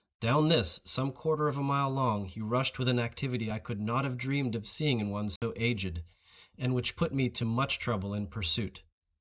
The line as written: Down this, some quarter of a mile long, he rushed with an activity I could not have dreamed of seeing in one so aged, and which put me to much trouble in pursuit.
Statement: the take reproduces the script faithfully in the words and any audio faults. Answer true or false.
false